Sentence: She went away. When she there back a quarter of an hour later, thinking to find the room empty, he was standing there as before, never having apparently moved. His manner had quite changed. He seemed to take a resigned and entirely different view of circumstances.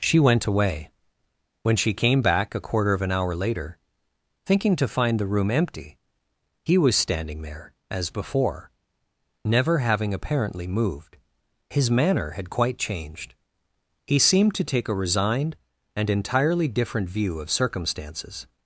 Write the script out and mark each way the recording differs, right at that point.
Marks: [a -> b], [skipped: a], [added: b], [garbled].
She went away. When she [there -> came] back a quarter of an hour later, thinking to find the room empty, he was standing there as before, never having apparently moved. His manner had quite changed. He seemed to take a resigned and entirely different view of circumstances.